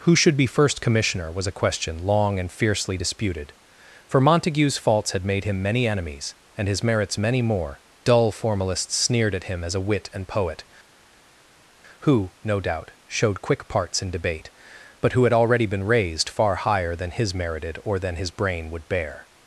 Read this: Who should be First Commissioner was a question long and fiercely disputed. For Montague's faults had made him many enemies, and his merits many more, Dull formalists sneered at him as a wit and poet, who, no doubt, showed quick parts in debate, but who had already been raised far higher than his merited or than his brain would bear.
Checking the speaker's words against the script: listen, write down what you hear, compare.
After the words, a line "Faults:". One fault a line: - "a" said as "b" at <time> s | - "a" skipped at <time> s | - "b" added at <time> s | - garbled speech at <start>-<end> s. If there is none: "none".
Who should be First Commissioner was a question long and fiercely disputed. For Montague's faults had made him many enemies, and his merits many more, Dull formalists sneered at him as a wit and poet, who, no doubt, showed quick parts in debate, but who had already been raised far higher than his merited or than his brain would bear.
Faults:
none